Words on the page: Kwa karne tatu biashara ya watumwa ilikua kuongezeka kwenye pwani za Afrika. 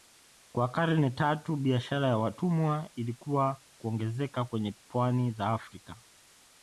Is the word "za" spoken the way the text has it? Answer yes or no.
yes